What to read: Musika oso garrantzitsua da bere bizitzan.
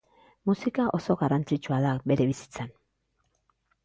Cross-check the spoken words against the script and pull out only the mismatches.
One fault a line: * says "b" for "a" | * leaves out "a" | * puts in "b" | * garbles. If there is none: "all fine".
all fine